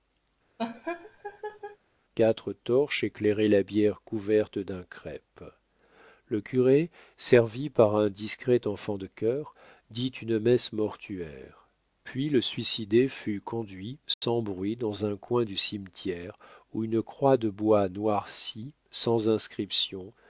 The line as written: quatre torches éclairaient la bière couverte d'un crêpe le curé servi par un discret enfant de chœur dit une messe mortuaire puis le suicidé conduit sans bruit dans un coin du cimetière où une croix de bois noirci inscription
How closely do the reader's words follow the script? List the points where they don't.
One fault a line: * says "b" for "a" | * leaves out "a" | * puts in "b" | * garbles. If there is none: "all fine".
* puts in "fut"
* puts in "sans"